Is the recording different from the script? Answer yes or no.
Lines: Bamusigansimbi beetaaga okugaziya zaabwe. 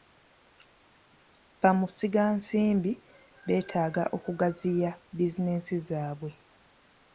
yes